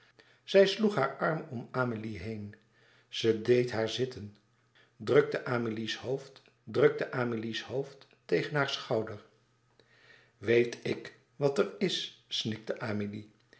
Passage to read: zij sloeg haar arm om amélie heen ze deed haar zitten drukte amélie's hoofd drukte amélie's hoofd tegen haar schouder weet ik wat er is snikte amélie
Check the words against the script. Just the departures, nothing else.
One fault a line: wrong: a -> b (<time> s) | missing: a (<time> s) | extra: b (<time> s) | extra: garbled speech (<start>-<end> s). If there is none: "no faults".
no faults